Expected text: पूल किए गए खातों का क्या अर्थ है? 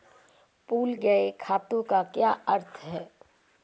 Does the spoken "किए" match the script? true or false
false